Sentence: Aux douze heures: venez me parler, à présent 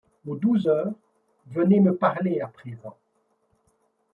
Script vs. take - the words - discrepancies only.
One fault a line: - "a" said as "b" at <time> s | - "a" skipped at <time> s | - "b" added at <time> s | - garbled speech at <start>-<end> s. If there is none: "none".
none